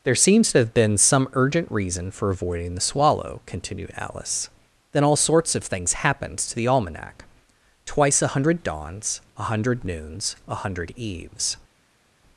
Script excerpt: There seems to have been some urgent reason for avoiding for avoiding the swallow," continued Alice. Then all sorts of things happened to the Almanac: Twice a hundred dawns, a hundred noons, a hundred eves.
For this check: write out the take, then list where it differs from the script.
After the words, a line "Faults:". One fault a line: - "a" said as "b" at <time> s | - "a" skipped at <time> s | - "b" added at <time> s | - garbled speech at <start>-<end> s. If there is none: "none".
There seems to have been some urgent reason for avoiding the swallow," continued Alice. Then all sorts of things happened to the Almanac: Twice a hundred dawns, a hundred noons, a hundred eves.
Faults:
- "for avoiding" skipped at 2.7 s